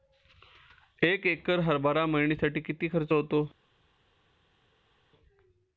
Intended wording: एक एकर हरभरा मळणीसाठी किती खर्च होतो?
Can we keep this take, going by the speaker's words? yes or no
yes